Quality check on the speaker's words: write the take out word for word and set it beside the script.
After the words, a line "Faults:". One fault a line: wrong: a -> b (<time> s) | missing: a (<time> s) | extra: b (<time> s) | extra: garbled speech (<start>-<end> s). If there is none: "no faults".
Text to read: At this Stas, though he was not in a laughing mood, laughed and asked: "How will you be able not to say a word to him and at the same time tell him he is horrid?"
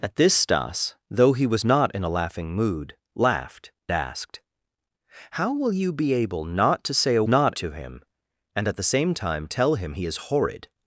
At this Stas, though he was not in a laughing mood, laughed asked: "How will you be able not to say a not to him and at the same time tell him he is horrid?"
Faults:
missing: and (3.7 s)
wrong: word -> not (7.3 s)